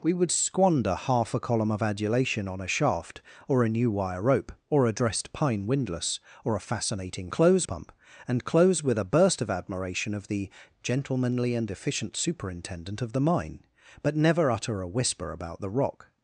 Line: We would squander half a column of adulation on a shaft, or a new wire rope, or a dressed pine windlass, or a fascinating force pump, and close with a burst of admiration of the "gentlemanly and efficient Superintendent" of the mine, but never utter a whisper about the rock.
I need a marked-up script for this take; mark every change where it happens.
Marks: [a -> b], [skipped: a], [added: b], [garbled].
We would squander half a column of adulation on a shaft, or a new wire rope, or a dressed pine windlass, or a fascinating [force -> close] pump, and close with a burst of admiration of the "gentlemanly and efficient Superintendent" of the mine, but never utter a whisper about the rock.